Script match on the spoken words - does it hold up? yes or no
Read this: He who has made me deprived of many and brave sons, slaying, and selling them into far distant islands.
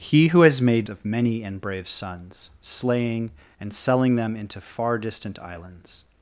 no